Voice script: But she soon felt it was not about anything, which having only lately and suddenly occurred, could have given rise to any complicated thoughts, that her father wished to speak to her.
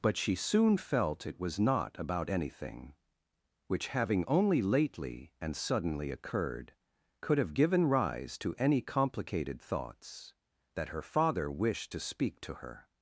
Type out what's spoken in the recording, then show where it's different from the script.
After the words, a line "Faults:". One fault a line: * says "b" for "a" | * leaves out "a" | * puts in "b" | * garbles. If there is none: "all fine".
But she soon felt it was not about anything, which having only lately and suddenly occurred, could have given rise to any complicated thoughts, that her father wished to speak to her.
Faults:
all fine